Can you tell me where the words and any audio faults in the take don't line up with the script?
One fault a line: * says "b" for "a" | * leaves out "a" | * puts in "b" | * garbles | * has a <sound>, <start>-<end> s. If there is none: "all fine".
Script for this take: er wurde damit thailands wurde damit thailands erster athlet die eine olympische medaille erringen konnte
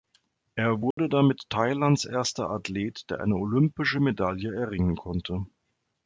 * has a dropout, 0.9-1.0 s
* leaves out "wurde damit thailands"
* says "der" for "die"